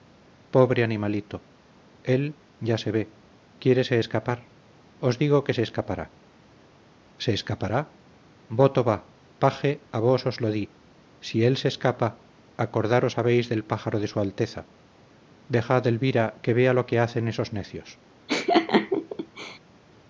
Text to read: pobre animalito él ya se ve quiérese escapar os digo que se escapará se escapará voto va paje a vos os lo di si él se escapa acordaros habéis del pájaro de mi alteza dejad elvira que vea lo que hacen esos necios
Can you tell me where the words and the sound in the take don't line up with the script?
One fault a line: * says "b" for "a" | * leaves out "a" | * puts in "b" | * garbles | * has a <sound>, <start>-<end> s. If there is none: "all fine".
* says "su" for "mi"
* has a laugh, 18.3-19.6 s